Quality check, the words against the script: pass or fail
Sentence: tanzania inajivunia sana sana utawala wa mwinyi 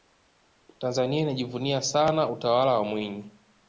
fail